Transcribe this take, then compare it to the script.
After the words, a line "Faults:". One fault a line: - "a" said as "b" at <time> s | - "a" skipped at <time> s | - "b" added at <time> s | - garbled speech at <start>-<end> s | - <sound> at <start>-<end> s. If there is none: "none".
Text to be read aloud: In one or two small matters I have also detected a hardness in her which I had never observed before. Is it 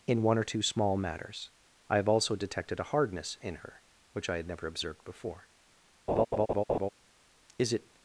In one or two small matters I have also detected a hardness in her which I had never observed before. Is it
Faults:
- laugh at 6.1-6.9 s